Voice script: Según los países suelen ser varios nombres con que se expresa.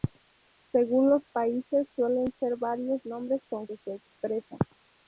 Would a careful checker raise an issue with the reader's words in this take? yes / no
no